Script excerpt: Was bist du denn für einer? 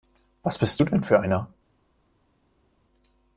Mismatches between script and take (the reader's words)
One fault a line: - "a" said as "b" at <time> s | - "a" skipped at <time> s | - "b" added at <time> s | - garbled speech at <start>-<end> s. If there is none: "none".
none